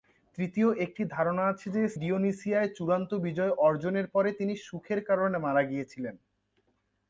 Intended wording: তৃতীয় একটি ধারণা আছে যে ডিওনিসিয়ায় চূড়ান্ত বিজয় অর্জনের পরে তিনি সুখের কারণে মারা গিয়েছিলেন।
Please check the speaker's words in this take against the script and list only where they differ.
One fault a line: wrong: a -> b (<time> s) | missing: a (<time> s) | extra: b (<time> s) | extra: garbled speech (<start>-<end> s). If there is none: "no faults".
no faults